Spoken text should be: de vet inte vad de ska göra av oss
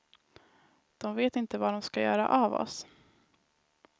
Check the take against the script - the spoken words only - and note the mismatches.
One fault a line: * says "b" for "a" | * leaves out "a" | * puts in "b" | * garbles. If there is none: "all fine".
all fine